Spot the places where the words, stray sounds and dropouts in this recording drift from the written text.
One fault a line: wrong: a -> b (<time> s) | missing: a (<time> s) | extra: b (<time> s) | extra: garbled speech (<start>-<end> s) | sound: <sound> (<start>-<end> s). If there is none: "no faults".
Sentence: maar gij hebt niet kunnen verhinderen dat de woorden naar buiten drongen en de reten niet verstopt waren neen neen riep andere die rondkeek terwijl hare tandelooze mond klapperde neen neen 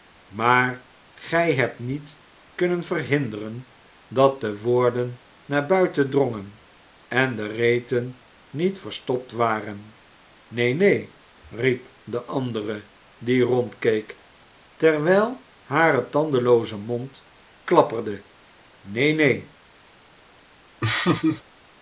extra: de (12.0 s)
sound: laugh (20.8-21.4 s)